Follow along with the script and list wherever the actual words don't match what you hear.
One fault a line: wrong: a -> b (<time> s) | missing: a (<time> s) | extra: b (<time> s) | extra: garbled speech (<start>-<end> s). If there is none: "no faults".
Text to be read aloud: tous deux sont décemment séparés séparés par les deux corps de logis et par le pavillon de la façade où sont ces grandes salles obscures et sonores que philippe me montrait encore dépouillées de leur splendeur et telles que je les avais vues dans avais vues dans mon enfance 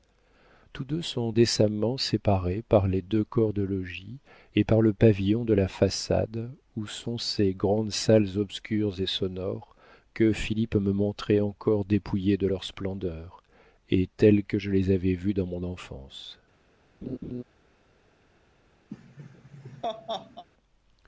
missing: séparés (2.6 s)
missing: avais vues dans (15.5 s)